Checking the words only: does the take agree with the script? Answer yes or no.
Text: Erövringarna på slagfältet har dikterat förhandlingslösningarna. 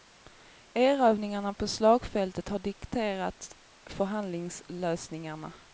yes